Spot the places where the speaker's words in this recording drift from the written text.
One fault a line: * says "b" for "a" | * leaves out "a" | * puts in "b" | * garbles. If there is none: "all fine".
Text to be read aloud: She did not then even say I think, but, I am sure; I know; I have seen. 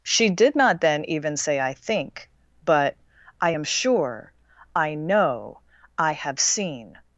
all fine